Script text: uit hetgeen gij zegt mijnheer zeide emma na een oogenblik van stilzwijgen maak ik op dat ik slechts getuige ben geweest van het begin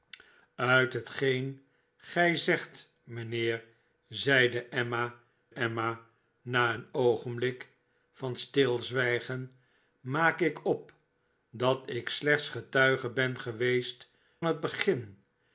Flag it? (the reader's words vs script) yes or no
yes